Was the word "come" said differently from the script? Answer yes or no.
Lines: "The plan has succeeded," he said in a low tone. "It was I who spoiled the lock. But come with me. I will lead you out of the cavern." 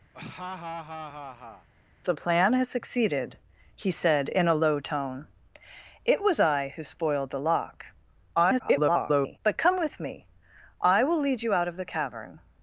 no